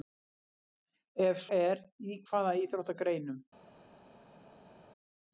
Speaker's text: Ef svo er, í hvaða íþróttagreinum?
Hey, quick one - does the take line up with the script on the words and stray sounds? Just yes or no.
no